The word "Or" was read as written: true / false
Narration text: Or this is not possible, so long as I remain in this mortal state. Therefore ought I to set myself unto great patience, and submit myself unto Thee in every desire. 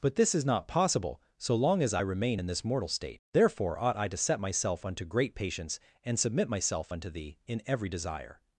false